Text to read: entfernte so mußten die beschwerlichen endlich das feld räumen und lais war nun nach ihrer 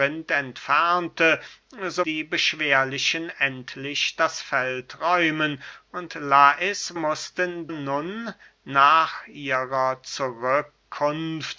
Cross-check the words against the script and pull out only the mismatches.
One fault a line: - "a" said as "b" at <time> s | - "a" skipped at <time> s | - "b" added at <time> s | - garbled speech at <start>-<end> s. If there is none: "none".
- "mußten" skipped at 2.0 s
- "war" said as "mußten" at 6.9 s